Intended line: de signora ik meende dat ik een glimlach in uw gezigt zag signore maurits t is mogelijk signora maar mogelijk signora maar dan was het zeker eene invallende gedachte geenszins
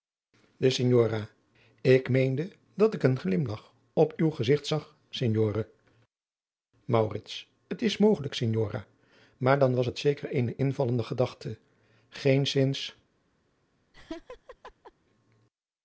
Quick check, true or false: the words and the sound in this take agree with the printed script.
false